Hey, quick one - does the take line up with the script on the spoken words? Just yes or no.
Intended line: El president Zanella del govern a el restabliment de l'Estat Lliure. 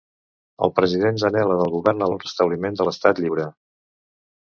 yes